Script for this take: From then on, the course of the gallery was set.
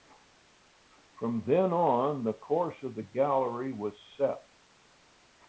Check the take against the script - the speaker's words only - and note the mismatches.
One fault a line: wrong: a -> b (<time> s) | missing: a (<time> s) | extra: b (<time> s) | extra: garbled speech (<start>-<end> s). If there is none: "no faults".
no faults